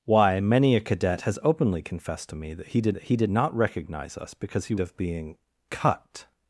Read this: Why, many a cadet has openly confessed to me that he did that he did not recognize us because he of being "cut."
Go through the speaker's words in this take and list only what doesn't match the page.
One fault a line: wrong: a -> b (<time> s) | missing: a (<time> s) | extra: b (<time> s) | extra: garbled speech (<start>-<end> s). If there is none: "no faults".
no faults